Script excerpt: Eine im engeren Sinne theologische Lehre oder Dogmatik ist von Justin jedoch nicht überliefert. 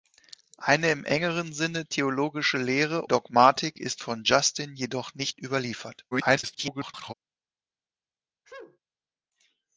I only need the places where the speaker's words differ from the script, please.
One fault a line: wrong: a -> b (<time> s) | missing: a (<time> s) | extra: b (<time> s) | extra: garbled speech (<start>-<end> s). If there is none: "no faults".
missing: oder (3.0 s)
extra: garbled speech (6.1-7.1 s)